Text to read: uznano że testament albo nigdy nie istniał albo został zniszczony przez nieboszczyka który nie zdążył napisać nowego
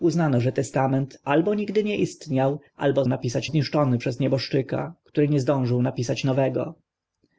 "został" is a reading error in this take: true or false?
true